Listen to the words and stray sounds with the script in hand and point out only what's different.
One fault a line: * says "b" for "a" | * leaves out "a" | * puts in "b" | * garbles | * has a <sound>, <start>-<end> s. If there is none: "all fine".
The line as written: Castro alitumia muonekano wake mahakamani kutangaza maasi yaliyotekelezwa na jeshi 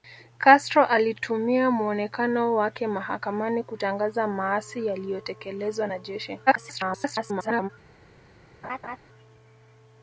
* garbles
* has a laugh, 8.6-9.0 s